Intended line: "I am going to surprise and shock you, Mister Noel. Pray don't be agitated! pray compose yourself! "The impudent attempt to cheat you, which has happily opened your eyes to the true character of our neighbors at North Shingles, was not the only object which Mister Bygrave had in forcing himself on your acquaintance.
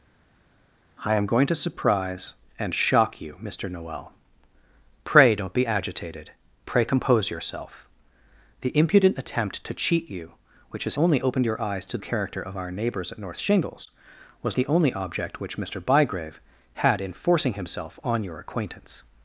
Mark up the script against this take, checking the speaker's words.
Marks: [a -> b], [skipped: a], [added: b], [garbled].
"I am going to surprise and shock you, Mister Noel. Pray don't be agitated! pray compose yourself! "The impudent attempt to cheat you, which has [happily -> only] opened your eyes to [skipped: the true] character of our neighbors at North Shingles, was [skipped: not] the only object which Mister Bygrave had in forcing himself on your acquaintance.